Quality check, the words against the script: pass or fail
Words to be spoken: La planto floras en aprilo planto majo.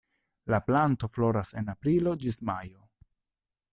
fail